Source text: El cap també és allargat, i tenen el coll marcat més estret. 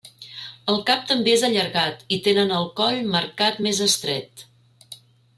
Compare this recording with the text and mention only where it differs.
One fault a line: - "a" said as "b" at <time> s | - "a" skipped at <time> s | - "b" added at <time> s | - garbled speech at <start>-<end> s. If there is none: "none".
none